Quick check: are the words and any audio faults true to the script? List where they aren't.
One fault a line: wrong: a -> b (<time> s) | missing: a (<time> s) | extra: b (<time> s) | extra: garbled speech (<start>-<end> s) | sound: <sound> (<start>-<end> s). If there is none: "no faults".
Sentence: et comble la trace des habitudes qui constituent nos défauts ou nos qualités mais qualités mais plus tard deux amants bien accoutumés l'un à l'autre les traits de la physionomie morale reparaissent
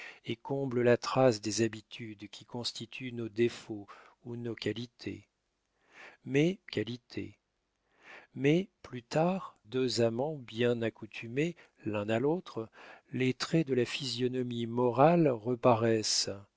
no faults